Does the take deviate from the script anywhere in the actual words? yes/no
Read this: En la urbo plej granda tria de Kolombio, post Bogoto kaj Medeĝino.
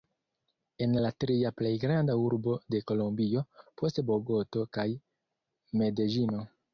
yes